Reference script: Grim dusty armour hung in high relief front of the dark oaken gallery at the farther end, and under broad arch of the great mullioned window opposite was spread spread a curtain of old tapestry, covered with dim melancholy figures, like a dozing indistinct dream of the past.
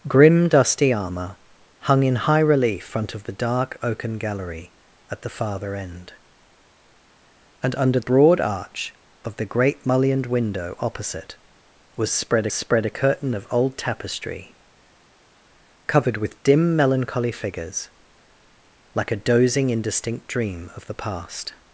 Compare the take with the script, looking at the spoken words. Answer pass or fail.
pass